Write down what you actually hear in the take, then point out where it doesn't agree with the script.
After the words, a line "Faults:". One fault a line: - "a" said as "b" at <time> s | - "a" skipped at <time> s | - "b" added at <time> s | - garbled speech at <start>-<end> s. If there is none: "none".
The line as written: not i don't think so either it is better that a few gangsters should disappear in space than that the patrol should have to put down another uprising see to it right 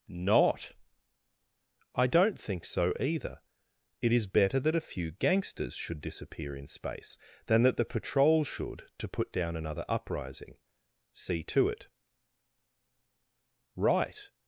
not i don't think so either it is better that a few gangsters should disappear in space than that the patrol should to put down another uprising see to it right
Faults:
- "have" skipped at 8.9 s